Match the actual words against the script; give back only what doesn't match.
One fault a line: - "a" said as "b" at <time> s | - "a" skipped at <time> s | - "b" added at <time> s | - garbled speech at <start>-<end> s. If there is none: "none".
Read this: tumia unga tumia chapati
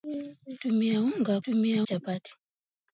none